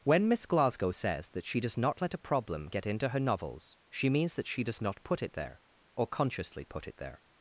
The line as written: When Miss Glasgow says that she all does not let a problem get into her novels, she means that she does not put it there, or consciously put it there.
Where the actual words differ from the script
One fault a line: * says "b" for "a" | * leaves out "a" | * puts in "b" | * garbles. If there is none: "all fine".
* leaves out "all"